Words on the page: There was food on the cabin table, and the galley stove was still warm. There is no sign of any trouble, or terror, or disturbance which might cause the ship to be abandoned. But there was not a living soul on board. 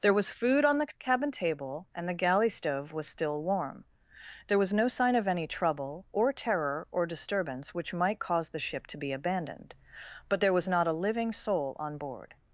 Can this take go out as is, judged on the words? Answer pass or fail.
fail